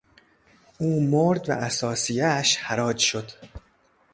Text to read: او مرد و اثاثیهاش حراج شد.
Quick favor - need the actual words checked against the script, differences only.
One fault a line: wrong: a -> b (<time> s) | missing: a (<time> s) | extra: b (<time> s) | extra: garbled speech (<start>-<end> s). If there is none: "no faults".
no faults